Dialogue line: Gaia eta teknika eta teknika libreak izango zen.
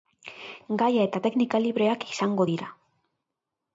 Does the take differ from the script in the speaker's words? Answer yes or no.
yes